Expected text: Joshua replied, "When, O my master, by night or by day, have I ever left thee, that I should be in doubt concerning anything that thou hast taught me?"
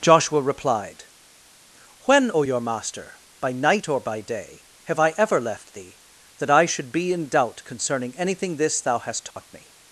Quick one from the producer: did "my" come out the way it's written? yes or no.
no